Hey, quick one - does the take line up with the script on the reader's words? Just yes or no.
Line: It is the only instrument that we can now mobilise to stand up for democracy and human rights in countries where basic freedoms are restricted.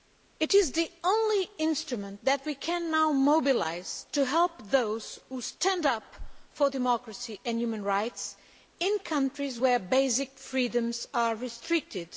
no